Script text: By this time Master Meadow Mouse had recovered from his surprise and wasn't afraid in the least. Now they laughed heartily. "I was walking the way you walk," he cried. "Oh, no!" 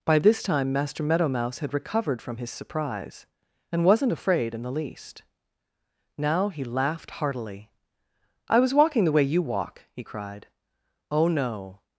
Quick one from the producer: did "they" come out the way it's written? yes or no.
no